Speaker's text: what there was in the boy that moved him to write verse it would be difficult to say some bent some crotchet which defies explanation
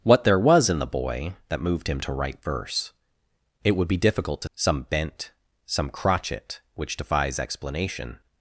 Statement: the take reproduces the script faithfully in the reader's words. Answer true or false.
false